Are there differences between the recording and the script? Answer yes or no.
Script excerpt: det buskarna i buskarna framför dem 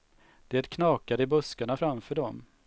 yes